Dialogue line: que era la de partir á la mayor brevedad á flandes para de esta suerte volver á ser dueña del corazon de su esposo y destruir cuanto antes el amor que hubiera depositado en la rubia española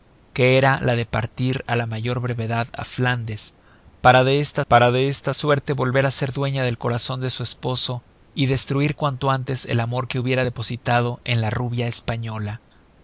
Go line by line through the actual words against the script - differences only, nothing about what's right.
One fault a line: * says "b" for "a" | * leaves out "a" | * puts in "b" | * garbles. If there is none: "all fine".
* puts in "para de esta"